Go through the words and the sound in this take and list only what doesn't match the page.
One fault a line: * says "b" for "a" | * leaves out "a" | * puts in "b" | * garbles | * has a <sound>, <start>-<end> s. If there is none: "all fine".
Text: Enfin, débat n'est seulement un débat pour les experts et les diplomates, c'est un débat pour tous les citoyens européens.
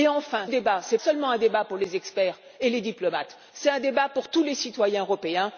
all fine